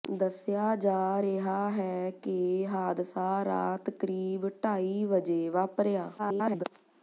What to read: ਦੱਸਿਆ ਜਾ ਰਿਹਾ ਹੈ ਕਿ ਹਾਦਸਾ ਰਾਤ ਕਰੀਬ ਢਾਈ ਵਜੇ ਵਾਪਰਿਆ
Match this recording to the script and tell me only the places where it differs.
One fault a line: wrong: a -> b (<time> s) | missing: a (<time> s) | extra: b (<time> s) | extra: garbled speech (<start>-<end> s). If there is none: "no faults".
extra: garbled speech (6.2-6.6 s)